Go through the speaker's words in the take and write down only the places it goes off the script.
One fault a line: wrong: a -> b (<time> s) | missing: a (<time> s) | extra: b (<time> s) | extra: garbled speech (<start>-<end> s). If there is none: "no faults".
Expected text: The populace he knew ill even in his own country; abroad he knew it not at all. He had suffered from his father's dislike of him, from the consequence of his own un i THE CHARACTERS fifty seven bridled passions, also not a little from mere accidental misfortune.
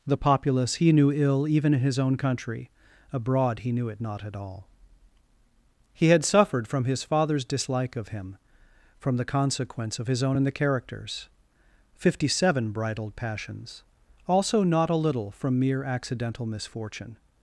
wrong: un i -> and (10.3 s)